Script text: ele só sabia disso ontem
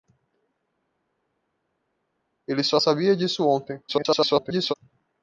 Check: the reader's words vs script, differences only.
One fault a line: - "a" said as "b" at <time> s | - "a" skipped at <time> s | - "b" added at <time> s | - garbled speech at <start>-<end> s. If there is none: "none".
- garbled speech at 3.9-4.7 s